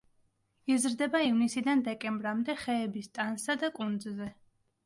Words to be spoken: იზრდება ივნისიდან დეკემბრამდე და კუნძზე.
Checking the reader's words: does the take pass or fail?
fail